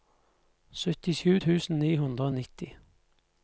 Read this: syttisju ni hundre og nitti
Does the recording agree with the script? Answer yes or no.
no